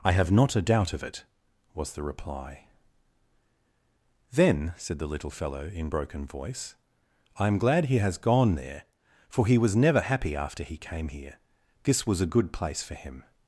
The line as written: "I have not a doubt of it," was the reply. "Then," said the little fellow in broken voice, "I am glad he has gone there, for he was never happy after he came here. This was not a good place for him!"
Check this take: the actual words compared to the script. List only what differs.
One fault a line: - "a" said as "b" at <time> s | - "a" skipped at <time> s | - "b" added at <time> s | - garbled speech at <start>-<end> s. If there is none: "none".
- "not" skipped at 12.2 s